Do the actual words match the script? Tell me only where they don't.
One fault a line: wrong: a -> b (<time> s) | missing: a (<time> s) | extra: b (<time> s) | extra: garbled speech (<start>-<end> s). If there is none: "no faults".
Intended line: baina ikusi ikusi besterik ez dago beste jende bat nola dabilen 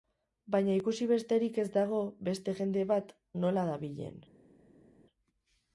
missing: ikusi (1.1 s)